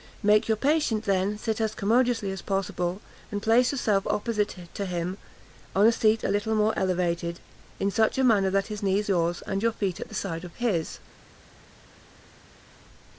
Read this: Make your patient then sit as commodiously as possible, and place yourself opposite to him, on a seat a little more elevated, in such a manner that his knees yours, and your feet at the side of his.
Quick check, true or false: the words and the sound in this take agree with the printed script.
true